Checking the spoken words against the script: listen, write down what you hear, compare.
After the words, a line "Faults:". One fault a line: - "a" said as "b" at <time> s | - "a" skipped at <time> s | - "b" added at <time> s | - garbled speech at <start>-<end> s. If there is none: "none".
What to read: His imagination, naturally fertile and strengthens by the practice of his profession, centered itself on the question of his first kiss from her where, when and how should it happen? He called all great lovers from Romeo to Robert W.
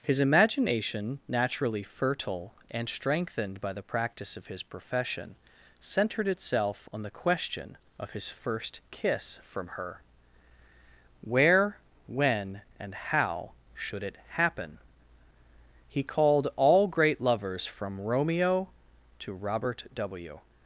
His imagination, naturally fertile and strengthened by the practice of his profession, centered itself on the question of his first kiss from her where, when and how should it happen? He called all great lovers from Romeo to Robert W.
Faults:
- "strengthens" said as "strengthened" at 2.9 s